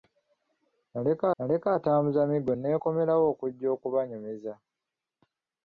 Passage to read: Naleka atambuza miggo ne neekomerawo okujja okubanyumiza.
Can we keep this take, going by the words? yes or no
no